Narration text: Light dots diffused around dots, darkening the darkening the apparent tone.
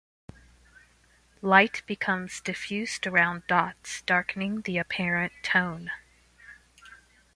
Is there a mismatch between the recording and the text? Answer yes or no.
yes